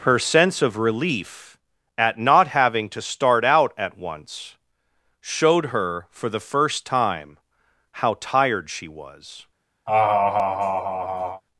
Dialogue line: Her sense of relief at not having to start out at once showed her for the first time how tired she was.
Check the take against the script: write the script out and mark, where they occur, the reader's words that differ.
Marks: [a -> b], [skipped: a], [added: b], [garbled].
Her sense of relief at not having to start out at once showed her for the first time how tired she was.